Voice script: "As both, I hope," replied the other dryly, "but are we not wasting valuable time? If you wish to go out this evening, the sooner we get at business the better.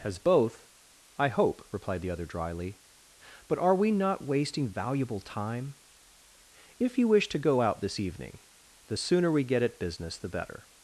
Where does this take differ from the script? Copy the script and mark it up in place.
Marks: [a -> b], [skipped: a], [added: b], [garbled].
"As both, I hope," replied the other dryly, "but are we not wasting valuable time? If you wish to go out this evening, the sooner we get at business the better.